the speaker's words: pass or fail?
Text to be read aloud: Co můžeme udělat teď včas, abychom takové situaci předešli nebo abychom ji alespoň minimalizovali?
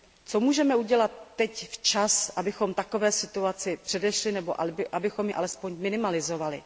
pass